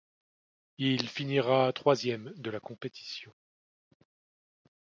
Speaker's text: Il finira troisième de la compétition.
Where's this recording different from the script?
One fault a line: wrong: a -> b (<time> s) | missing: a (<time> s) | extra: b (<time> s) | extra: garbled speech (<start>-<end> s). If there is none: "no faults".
no faults